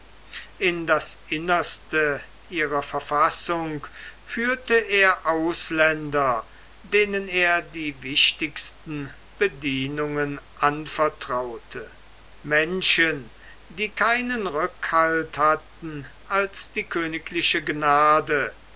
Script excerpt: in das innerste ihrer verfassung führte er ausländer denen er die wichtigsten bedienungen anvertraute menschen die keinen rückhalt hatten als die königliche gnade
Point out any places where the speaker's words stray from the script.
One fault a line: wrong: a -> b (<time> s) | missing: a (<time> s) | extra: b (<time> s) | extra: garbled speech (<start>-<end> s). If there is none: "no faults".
no faults